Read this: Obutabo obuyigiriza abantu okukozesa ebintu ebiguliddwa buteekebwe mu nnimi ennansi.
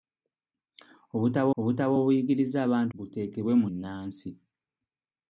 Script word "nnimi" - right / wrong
wrong